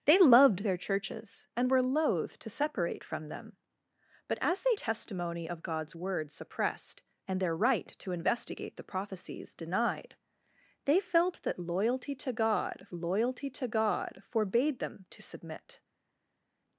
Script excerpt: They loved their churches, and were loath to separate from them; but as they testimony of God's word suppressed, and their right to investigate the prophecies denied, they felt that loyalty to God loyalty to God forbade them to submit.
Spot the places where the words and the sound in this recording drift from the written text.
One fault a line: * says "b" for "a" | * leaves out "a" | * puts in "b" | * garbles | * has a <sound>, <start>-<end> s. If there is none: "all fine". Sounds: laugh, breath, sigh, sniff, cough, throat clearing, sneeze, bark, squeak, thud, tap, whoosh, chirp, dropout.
all fine